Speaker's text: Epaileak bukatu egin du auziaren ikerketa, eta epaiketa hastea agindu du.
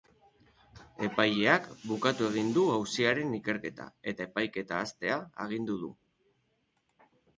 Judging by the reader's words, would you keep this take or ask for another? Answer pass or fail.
pass